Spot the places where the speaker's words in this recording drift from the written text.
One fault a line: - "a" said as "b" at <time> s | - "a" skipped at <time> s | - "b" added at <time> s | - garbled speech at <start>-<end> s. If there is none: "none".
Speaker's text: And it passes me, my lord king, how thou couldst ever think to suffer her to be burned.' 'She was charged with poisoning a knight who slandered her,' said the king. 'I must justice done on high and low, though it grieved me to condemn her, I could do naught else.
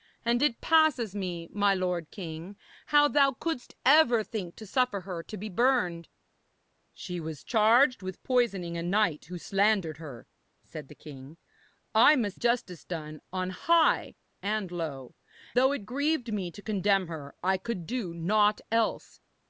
none